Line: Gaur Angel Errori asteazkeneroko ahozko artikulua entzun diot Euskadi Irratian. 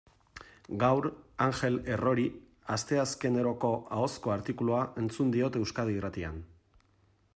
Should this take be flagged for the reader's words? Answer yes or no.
no